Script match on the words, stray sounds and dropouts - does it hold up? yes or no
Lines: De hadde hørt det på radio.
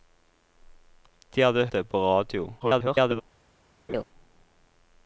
no